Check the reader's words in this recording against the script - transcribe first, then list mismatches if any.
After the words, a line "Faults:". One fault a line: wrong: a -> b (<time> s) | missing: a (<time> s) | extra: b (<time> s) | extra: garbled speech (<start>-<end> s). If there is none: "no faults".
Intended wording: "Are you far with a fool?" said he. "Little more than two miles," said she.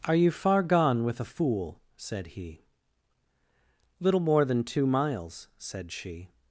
"Are you far gone with a fool?" said he. "Little more than two miles," said she.
Faults:
extra: gone (0.6 s)